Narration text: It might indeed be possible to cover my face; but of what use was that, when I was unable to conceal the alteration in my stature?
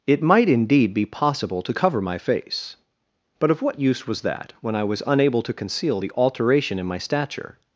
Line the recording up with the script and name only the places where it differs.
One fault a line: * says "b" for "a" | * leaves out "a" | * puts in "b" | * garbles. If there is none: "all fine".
all fine